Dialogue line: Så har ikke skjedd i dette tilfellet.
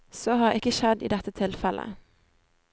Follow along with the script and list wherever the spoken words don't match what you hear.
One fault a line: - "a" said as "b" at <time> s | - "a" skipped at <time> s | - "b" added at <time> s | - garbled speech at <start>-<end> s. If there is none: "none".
none